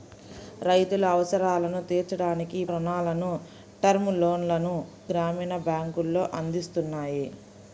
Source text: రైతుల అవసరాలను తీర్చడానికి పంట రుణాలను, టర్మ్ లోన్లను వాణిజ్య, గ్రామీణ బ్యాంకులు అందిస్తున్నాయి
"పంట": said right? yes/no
no